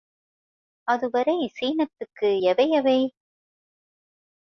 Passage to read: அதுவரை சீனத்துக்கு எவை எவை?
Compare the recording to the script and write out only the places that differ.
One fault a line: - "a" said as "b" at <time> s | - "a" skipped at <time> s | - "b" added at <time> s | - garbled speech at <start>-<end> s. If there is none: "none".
none